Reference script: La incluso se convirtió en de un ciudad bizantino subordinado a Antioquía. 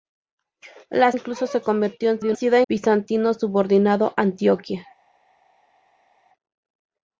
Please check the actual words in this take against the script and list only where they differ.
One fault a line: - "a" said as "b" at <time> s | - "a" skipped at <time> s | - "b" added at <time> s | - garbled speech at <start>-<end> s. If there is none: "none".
none